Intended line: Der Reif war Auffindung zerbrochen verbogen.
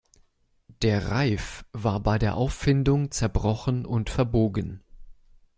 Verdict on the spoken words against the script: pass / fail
fail